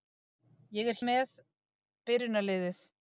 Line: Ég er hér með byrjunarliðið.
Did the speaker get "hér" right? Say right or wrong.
wrong